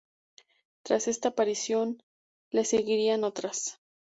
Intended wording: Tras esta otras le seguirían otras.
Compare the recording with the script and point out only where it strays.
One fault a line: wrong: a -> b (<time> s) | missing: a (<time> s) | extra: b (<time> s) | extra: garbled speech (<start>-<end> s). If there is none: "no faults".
wrong: otras -> aparición (1.3 s)